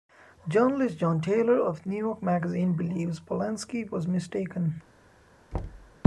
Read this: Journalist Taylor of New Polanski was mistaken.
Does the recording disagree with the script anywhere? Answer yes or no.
yes